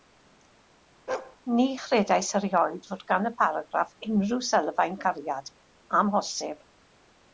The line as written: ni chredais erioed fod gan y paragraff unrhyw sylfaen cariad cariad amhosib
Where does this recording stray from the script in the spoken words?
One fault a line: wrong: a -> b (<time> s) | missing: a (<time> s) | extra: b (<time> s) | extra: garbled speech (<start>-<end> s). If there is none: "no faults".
missing: cariad (5.5 s)